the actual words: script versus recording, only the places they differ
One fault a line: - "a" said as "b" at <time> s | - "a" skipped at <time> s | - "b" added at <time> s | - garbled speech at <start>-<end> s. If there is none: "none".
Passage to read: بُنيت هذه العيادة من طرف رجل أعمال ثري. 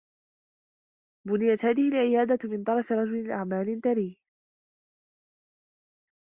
none